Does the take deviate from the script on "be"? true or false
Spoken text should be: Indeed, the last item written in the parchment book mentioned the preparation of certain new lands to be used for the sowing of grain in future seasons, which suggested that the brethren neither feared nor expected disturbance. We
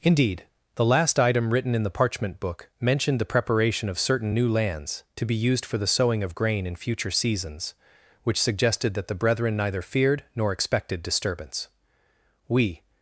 false